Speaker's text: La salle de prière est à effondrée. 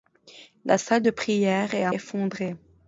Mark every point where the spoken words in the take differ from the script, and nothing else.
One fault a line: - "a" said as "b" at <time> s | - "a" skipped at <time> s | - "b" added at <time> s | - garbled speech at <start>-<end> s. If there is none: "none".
none